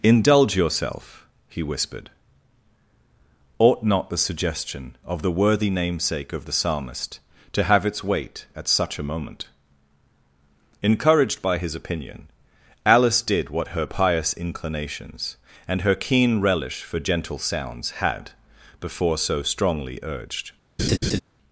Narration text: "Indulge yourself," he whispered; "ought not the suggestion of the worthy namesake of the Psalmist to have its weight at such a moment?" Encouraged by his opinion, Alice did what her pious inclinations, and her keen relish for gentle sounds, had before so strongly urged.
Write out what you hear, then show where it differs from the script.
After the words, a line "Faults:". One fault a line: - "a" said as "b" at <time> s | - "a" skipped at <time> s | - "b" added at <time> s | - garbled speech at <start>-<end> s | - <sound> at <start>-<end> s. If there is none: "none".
"Indulge yourself," he whispered; "ought not the suggestion of the worthy namesake of the Psalmist to have its weight at such a moment?" Encouraged by his opinion, Alice did what her pious inclinations, and her keen relish for gentle sounds, had before so strongly urged.
Faults:
- laugh at 20.8-21.2 s